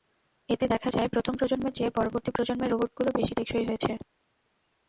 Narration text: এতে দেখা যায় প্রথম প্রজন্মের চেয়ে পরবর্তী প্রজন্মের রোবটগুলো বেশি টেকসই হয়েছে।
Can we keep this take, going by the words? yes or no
yes